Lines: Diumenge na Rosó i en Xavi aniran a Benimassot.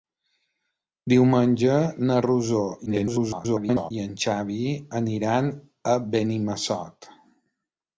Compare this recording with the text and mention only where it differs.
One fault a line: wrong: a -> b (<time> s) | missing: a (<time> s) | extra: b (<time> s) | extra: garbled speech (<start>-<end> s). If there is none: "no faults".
extra: garbled speech (2.9-3.9 s)